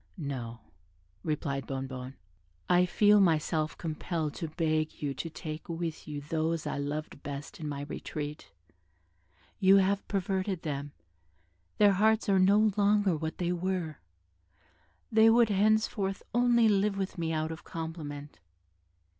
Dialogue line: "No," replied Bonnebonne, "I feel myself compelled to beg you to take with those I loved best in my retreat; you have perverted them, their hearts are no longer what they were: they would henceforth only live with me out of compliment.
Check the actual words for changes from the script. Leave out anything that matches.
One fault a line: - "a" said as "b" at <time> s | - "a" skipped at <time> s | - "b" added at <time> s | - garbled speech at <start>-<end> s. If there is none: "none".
- "you" added at 6.1 s